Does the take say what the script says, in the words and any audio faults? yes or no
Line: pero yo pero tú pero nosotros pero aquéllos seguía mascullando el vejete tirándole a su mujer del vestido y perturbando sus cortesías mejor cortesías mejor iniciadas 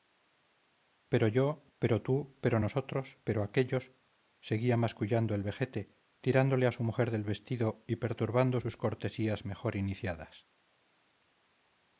no